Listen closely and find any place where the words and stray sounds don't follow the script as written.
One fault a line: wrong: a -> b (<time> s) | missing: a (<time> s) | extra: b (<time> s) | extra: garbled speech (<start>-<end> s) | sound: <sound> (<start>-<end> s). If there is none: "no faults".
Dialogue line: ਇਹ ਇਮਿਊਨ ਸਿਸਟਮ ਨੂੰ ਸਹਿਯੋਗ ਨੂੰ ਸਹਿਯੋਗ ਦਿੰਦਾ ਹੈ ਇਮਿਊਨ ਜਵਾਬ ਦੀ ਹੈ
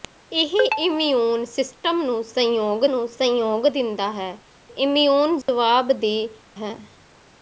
sound: dropout (5.4-5.5 s)